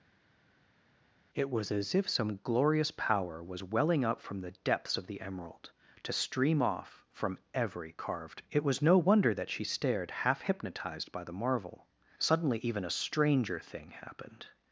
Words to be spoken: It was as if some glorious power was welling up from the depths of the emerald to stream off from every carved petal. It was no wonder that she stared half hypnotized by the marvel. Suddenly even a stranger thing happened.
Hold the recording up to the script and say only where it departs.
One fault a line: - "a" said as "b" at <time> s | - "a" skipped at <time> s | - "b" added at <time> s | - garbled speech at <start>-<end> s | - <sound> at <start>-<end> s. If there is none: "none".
- "petal" skipped at 8.4 s